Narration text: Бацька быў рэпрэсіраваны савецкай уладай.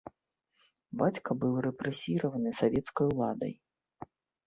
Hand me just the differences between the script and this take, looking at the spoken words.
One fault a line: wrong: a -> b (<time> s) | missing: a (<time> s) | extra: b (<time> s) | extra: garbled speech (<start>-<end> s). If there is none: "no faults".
no faults